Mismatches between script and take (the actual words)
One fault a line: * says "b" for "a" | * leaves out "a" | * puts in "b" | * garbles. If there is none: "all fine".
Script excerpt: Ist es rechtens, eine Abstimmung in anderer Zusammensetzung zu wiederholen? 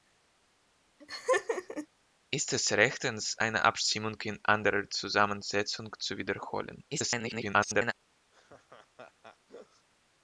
* garbles